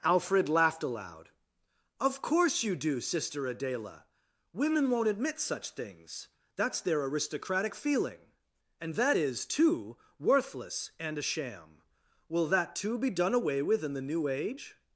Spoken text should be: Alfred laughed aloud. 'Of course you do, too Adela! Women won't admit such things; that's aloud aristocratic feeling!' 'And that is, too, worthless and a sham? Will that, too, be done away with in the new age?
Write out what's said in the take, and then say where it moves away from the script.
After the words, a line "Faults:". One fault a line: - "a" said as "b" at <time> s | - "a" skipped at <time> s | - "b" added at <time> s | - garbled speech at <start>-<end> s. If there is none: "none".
Alfred laughed aloud. 'Of course you do, sister Adela! Women won't admit such things; that's their aristocratic feeling!' 'And that is, too, worthless and a sham? Will that, too, be done away with in the new age?
Faults:
- "too" said as "sister" at 3.0 s
- "aloud" said as "their" at 6.8 s